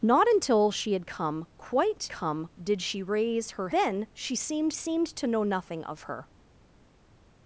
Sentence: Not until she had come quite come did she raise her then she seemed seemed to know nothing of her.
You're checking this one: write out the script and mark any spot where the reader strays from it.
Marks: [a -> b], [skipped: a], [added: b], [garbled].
Not until she had come quite come did she raise her then she seemed seemed to know nothing of her.